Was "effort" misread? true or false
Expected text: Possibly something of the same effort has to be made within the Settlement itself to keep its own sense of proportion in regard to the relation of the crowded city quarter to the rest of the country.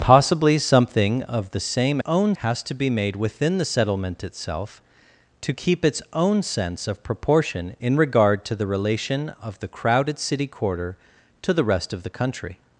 true